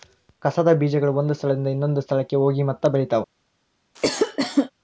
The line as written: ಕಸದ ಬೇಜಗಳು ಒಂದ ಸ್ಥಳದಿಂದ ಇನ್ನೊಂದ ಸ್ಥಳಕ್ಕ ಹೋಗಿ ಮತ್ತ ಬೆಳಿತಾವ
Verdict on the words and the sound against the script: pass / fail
fail